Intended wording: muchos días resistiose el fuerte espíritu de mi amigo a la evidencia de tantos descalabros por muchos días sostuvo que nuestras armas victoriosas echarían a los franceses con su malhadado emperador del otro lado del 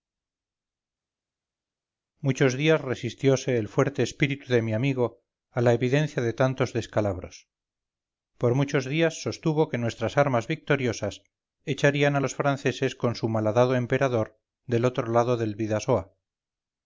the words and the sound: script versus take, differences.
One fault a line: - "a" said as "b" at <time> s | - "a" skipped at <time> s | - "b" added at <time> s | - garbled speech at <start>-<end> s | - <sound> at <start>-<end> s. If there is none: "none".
none